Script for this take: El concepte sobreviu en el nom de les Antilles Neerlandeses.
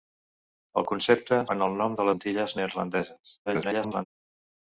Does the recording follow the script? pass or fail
fail